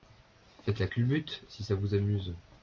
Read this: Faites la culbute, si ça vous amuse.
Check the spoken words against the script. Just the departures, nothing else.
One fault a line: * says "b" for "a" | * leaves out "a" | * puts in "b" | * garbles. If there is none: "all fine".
all fine